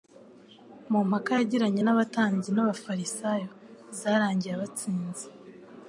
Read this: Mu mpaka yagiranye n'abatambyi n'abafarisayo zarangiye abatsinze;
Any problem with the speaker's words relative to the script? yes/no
no